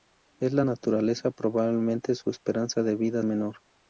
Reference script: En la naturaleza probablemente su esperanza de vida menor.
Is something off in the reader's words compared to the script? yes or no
no